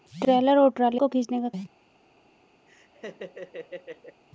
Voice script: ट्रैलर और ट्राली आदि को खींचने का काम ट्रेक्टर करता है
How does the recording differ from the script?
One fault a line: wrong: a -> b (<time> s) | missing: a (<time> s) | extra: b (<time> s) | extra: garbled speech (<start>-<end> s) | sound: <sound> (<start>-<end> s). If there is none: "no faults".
missing: आदि (1.0 s)
missing: काम ट्रेक्टर करता (1.5 s)
sound: laugh (2.7-4.2 s)